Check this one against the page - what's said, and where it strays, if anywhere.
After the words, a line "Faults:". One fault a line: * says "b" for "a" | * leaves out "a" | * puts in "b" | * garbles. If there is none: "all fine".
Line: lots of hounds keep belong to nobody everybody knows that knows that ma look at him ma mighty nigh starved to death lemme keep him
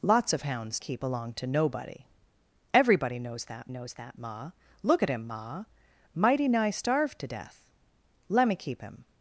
lots of hounds keep belong to nobody everybody knows that knows that ma look at him ma mighty nigh starved to death lemme keep him
Faults:
all fine